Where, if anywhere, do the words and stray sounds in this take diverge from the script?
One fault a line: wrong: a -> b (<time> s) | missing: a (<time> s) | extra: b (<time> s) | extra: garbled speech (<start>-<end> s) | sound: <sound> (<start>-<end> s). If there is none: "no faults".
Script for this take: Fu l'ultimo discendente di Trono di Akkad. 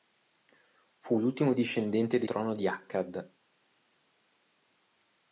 no faults